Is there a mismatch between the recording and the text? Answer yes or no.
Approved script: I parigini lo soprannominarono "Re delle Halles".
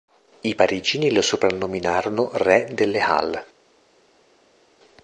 no